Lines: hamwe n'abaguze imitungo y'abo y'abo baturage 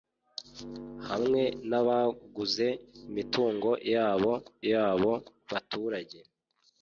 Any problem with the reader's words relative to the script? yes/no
no